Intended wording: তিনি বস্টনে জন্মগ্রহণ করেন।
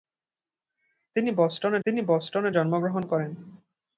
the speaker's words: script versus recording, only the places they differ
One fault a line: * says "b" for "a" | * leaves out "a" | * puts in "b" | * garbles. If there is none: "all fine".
* puts in "তিনি বস্টনে"